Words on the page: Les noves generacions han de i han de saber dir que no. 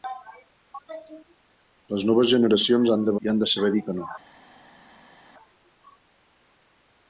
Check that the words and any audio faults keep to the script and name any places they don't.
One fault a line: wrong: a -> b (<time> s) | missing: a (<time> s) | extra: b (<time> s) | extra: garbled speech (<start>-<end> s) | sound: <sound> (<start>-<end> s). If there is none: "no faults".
no faults